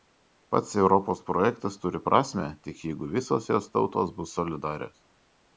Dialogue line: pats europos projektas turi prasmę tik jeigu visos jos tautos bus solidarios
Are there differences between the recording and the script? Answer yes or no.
no